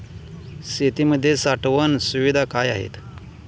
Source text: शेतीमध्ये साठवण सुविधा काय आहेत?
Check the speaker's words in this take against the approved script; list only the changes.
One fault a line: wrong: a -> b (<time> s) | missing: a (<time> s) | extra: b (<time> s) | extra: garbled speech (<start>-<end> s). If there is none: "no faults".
no faults